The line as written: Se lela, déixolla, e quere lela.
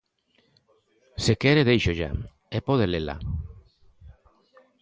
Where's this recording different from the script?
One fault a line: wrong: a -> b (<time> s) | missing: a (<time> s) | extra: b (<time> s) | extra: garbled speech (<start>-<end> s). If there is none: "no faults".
wrong: lela -> quere (1.4 s)
wrong: quere -> pode (2.6 s)